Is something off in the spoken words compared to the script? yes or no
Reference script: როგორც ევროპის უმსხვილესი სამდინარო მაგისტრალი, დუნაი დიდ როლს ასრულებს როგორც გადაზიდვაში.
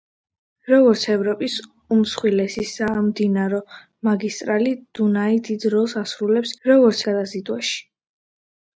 no